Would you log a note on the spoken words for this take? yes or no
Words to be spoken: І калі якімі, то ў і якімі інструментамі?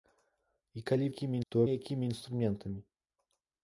no